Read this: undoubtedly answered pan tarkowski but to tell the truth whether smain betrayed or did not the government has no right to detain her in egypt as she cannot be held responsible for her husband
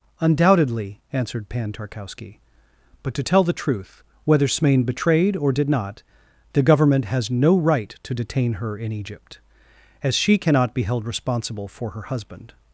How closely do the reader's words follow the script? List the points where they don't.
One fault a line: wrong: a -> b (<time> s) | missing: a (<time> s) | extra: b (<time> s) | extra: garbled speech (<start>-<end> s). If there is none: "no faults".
no faults